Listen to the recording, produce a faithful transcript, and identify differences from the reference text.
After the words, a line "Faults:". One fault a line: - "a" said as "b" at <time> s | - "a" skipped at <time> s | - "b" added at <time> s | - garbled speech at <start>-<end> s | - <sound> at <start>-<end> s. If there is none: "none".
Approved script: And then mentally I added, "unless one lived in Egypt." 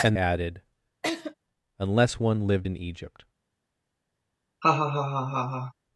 And added, "unless one lived in Egypt."
Faults:
- "then mentally I" skipped at 0.2 s
- laugh at 1.0-1.3 s
- laugh at 4.6-5.7 s